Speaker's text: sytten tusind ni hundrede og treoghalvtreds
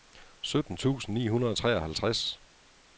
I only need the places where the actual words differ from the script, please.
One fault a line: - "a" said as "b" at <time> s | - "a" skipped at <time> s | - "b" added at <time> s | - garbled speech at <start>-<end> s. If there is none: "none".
none